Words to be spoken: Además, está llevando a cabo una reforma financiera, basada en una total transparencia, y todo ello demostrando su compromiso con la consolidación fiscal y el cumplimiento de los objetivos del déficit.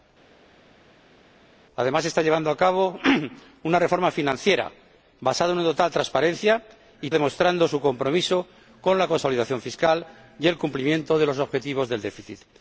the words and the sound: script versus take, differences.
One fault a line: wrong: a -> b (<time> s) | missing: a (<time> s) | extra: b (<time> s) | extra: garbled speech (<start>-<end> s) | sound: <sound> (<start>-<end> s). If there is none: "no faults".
missing: todo ello (7.1 s)